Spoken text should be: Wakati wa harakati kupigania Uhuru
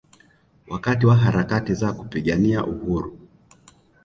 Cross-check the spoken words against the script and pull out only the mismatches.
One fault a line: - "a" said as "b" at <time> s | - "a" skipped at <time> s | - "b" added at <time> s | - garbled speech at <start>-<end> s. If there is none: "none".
- "za" added at 1.7 s